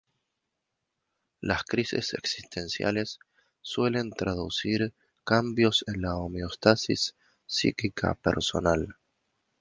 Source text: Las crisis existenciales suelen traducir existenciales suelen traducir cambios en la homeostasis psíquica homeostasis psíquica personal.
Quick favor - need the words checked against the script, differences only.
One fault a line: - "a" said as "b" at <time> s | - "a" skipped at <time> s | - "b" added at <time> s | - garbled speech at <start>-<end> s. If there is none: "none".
- "existenciales suelen traducir" skipped at 4.9 s
- "homeostasis psíquica" skipped at 8.1 s